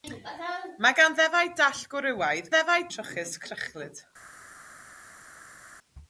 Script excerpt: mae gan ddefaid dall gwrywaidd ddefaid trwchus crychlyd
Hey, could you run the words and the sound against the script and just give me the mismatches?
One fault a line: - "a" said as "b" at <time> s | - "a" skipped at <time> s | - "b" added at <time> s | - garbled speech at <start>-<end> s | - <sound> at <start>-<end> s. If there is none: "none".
none